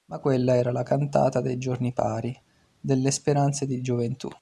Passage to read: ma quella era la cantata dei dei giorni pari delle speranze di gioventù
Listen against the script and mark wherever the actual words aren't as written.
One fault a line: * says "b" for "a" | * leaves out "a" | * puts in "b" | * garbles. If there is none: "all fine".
* leaves out "dei"